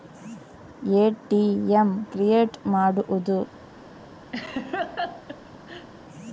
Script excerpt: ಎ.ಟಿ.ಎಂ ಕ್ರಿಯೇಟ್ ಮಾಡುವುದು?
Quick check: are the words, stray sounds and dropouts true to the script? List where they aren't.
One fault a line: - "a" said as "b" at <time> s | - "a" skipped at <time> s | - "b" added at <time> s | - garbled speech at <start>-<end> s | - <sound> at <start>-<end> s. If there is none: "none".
- laugh at 4.3-5.9 s